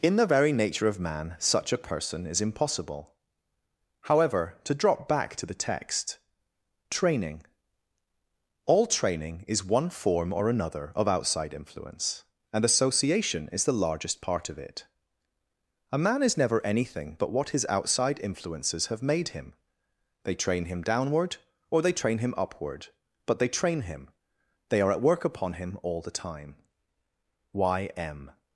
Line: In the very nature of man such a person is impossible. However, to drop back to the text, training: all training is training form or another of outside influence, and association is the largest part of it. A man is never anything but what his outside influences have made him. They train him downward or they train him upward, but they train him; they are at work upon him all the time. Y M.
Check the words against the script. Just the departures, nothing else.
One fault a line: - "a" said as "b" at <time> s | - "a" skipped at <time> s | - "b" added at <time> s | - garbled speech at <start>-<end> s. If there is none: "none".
- "training" said as "one" at 9.7 s